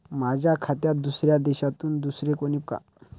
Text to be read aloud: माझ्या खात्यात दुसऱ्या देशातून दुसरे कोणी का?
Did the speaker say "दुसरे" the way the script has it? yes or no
yes